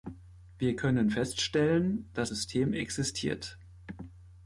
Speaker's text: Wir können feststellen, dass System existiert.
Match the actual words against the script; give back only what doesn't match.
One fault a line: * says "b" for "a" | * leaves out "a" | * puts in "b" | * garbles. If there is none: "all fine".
all fine